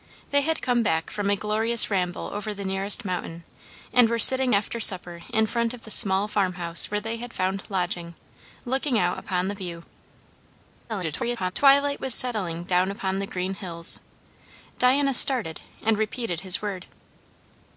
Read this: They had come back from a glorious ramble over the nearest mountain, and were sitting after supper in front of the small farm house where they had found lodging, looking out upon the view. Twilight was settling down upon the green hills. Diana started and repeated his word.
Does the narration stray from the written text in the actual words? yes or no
yes